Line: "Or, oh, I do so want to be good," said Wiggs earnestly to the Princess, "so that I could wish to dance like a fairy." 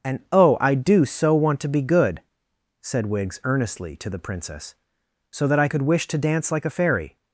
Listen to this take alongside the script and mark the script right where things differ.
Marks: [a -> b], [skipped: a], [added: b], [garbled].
["Or, -> And] oh, I do so want to be good," said Wiggs earnestly to the Princess, "so that I could wish to dance like a fairy."